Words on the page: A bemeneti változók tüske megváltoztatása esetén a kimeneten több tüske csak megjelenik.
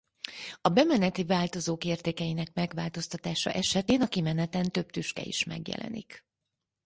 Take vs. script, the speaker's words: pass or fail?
fail